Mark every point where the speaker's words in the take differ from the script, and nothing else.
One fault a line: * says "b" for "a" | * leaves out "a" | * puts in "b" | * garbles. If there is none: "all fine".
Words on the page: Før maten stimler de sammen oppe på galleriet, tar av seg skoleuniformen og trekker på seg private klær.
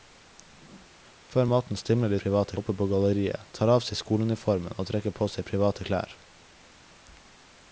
* says "private" for "sammen"